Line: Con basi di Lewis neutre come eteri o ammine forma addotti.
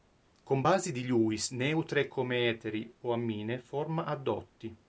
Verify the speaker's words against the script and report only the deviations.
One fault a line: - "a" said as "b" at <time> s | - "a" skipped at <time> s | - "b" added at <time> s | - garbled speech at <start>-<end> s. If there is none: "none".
none